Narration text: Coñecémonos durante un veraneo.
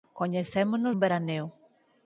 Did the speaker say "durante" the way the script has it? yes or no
no